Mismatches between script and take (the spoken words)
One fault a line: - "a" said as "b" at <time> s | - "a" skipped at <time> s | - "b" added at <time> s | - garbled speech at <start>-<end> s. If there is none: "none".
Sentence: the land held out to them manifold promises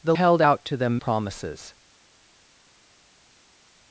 - "land" skipped at 0.1 s
- "manifold" skipped at 1.0 s